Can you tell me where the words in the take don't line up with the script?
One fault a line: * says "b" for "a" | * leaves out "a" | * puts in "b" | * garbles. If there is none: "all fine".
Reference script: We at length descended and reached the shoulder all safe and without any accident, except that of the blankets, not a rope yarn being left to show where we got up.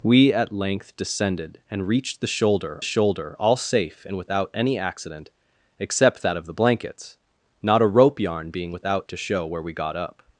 * puts in "shoulder"
* says "without" for "left"